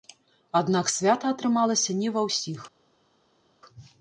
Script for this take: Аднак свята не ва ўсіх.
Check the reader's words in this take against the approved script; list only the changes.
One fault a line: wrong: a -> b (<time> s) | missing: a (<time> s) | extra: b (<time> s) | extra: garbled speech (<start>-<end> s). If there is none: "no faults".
extra: атрымалася (1.4 s)